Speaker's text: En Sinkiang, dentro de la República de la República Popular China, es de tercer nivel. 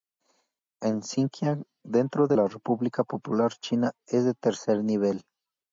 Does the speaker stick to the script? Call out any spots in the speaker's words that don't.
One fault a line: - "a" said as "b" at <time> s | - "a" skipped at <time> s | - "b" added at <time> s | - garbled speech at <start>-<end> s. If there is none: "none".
- "de la República" skipped at 3.0 s